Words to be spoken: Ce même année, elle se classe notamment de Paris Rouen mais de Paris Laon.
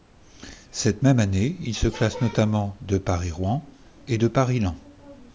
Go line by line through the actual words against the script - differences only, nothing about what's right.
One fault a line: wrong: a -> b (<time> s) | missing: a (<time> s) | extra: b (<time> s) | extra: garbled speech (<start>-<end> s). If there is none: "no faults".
wrong: Ce -> Cette (0.7 s)
wrong: elle -> il (1.7 s)
wrong: mais -> et (4.1 s)